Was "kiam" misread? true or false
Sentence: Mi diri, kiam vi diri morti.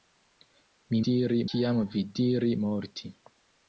false